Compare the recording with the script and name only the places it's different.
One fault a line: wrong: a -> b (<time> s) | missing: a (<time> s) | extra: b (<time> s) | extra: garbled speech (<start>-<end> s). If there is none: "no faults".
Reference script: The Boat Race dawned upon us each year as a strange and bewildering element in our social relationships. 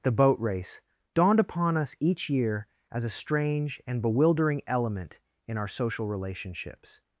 no faults